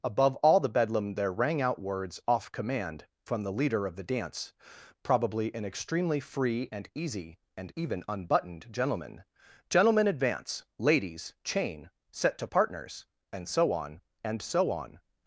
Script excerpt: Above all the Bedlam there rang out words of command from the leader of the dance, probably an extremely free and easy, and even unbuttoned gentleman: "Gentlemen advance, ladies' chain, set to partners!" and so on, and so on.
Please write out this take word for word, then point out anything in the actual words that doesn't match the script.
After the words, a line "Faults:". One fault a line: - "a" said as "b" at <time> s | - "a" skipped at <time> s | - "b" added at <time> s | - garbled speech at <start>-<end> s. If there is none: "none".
Above all the Bedlam there rang out words off command from the leader of the dance, probably an extremely free and easy, and even unbuttoned gentleman: "Gentlemen advance, ladies' chain, set to partners!" and so on, and so on.
Faults:
- "of" said as "off" at 2.3 s